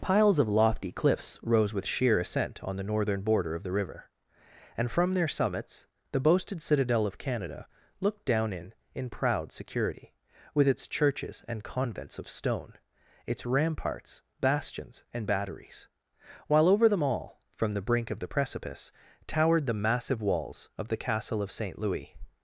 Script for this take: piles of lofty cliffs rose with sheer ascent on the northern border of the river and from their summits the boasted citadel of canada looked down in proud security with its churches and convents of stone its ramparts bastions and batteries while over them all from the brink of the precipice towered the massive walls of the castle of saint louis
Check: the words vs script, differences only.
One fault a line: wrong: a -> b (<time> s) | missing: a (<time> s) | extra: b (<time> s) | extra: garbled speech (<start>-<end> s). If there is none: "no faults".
extra: in (8.9 s)